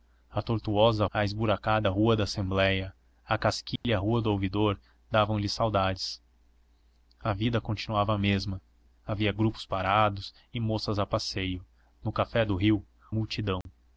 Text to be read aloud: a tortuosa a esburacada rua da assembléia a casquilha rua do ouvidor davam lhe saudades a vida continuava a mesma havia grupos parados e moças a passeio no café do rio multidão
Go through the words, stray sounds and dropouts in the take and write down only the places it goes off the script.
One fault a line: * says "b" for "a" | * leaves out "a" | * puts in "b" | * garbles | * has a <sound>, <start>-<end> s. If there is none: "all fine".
* has a dropout, 3.8-3.8 s
* has a dropout, 13.6-13.7 s